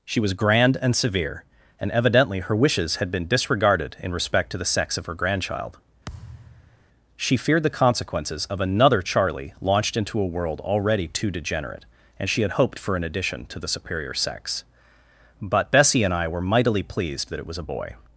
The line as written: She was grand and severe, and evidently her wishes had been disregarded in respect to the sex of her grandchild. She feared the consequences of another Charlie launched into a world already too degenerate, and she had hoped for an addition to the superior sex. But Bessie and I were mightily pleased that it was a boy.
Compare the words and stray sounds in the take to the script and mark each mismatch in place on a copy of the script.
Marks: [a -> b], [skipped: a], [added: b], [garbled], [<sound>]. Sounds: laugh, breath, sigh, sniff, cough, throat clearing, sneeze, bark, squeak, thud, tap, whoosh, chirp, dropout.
She was grand and severe, and evidently her wishes had been disregarded in respect to the sex of her grandchild. [thud] She feared the consequences of another Charlie launched into a world already too degenerate, and she had hoped for an addition to the superior sex. But Bessie and I were mightily pleased that it was a boy.